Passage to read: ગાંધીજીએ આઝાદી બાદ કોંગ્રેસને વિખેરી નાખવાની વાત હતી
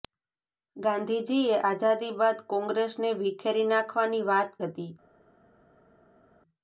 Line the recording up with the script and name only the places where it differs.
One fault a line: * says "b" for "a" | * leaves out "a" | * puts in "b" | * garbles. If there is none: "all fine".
all fine